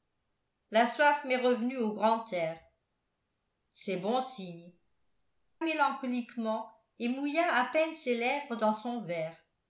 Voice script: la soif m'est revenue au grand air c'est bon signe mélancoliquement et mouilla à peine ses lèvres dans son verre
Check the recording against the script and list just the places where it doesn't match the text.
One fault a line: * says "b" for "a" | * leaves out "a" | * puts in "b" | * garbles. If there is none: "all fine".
all fine